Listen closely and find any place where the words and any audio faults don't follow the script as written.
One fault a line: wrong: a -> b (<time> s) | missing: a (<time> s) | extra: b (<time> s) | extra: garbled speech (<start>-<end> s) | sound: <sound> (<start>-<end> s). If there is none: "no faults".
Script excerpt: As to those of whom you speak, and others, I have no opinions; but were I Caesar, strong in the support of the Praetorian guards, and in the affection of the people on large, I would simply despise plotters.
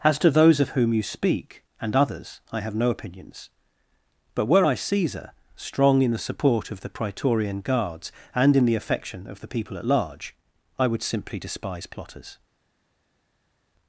wrong: on -> at (9.7 s)